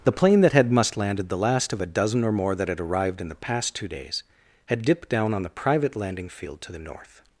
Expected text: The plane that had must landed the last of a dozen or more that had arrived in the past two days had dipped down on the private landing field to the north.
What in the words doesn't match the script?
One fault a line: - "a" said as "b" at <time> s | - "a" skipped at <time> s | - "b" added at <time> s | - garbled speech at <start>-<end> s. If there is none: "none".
none